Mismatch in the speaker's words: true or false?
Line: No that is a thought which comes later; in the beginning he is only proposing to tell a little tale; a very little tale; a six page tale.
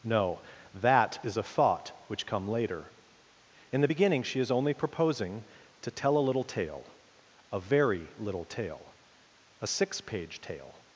true